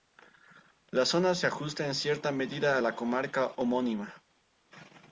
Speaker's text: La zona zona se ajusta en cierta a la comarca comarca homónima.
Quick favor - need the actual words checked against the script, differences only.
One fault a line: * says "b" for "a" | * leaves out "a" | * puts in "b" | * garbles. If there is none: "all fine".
* leaves out "zona"
* puts in "medida"
* leaves out "comarca"